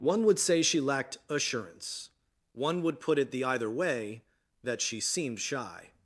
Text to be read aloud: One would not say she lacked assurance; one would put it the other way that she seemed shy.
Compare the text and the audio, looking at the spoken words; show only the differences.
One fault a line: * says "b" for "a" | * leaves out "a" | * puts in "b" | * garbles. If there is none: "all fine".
* leaves out "not"
* says "either" for "other"